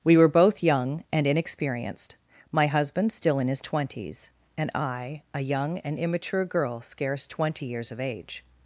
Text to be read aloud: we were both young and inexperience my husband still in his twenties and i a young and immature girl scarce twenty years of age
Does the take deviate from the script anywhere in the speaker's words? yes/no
yes